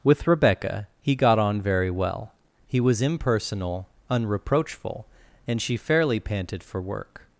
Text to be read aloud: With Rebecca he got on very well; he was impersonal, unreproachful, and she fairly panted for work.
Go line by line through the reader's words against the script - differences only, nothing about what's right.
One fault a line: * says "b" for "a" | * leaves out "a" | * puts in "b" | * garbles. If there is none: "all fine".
all fine